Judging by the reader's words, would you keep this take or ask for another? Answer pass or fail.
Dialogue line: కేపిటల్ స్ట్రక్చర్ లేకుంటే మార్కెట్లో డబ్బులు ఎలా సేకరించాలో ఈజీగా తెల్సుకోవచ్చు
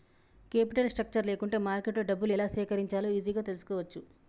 pass